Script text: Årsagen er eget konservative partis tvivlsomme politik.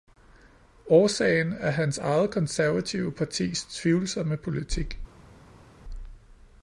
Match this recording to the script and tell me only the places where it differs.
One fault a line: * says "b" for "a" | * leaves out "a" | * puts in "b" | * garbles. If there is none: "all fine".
* puts in "hans"